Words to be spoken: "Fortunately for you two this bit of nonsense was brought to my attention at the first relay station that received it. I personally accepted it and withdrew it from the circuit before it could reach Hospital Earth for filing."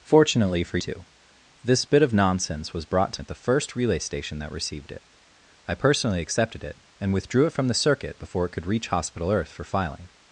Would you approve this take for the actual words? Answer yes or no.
no